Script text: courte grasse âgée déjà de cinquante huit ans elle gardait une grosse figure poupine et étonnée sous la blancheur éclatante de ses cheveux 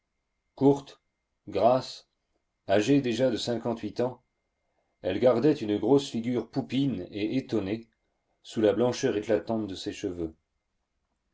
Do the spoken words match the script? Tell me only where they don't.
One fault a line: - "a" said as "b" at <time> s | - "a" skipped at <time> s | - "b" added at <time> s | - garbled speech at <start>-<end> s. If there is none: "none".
none